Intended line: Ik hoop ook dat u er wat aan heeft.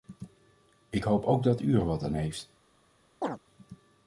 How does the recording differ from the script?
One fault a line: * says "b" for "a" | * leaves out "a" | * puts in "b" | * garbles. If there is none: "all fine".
all fine